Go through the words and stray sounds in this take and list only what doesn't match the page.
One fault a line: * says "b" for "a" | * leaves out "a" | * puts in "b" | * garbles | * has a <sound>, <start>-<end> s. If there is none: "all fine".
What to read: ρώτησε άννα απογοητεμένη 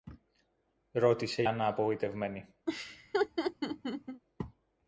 * has a laugh, 2.7-4.2 s